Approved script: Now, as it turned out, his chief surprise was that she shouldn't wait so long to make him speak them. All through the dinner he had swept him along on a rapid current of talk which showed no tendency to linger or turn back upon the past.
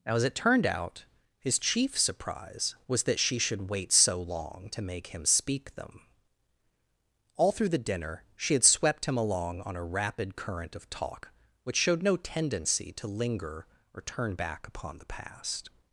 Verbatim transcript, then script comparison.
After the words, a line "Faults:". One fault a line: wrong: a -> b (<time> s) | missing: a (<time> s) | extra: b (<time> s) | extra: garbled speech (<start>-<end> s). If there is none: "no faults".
Now, as it turned out, his chief surprise was that she should wait so long to make him speak them. All through the dinner she had swept him along on a rapid current of talk which showed no tendency to linger or turn back upon the past.
Faults:
wrong: shouldn't -> should (3.4 s)
wrong: he -> she (8.3 s)